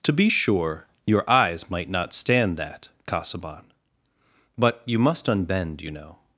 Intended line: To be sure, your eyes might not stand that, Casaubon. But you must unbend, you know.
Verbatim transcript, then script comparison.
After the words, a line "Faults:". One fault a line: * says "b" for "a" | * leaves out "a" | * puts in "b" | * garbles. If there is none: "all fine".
To be sure, your eyes might not stand that, Casaubon. But you must unbend, you know.
Faults:
all fine